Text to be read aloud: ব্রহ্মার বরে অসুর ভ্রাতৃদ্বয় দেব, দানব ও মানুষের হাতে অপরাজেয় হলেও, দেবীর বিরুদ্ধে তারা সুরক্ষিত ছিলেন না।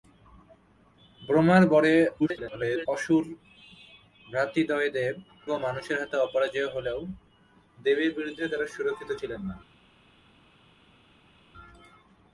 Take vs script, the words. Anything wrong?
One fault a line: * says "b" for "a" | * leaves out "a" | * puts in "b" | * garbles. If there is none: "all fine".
* garbles
* leaves out "দানব"